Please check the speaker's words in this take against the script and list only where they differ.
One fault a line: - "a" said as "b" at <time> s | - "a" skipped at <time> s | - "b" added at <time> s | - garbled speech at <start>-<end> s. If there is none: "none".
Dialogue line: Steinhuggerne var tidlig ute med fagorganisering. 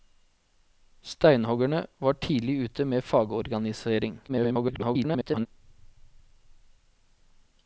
- garbled speech at 4.3-5.5 s